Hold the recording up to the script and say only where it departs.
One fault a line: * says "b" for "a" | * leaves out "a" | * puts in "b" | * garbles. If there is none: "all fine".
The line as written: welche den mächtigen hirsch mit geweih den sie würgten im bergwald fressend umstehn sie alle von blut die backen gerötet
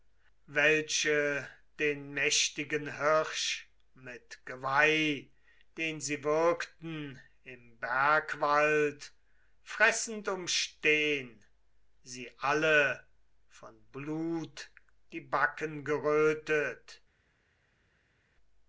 all fine